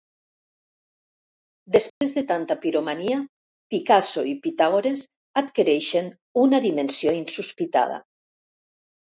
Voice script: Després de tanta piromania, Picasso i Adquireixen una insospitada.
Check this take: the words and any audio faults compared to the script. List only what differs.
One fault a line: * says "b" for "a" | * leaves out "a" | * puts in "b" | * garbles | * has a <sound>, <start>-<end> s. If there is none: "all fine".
* has a dropout, 1.9-2.0 s
* puts in "Pitàgores"
* puts in "dimensió"